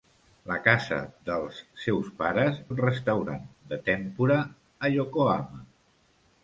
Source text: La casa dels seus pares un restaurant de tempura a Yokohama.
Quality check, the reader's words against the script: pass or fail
pass